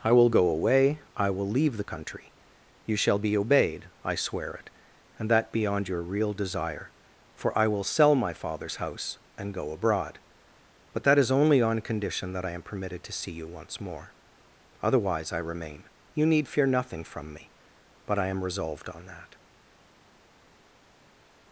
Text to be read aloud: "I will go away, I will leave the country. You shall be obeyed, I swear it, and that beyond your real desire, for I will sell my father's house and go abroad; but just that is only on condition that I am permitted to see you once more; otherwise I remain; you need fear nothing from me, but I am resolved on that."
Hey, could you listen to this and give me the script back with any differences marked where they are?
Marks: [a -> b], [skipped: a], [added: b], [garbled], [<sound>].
"I will go away, I will leave the country. You shall be obeyed, I swear it, and that beyond your real desire, for I will sell my father's house and go abroad; but [skipped: just] that is only on condition that I am permitted to see you once more; otherwise I remain; you need fear nothing from me, but I am resolved on that."